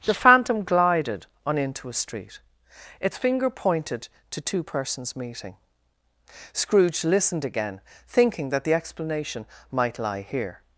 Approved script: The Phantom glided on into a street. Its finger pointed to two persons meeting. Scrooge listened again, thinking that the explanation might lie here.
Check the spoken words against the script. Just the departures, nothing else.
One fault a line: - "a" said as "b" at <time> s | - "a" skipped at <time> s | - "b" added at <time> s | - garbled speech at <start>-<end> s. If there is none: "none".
none